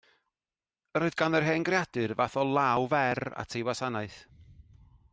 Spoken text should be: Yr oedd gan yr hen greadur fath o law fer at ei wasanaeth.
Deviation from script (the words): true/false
false